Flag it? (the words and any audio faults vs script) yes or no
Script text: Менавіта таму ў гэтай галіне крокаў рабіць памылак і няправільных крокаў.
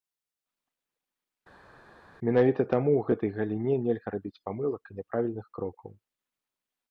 yes